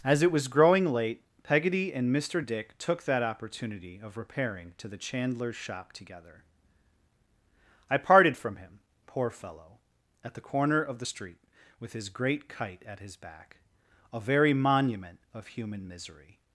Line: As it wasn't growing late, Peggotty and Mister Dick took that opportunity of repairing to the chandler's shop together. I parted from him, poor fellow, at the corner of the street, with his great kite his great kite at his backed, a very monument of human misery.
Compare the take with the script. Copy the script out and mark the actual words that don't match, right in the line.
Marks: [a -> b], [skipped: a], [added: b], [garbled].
As it [wasn't -> was] growing late, Peggotty and Mister Dick took that opportunity of repairing to the chandler's shop together. I parted from him, poor fellow, at the corner of the street, with his great kite [skipped: his great kite] at his [backed, -> back] a very monument of human misery.